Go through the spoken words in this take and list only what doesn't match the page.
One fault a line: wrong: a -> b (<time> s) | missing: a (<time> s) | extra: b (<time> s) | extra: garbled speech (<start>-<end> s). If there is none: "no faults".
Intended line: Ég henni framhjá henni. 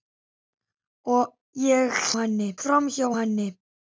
no faults